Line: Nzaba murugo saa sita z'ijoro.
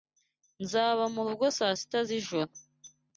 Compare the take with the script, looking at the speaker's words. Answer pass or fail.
pass